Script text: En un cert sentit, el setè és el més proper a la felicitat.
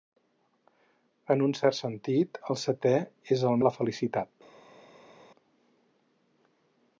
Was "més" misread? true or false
true